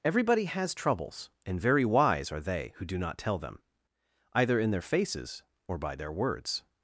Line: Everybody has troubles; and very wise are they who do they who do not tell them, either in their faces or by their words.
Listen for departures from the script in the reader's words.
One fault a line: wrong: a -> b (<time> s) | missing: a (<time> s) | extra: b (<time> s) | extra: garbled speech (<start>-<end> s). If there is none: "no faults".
missing: they who do (3.0 s)